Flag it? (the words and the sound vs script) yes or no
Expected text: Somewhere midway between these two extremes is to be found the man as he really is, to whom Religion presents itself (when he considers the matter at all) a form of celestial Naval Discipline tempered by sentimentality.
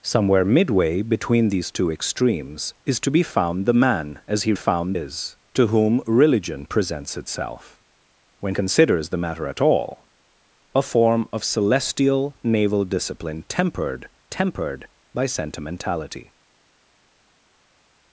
yes